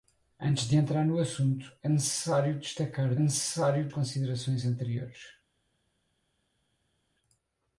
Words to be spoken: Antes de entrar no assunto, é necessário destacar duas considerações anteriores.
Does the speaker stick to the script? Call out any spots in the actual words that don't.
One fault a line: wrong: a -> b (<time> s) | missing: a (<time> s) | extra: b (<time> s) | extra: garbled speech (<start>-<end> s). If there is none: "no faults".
wrong: duas -> necessário (3.2 s)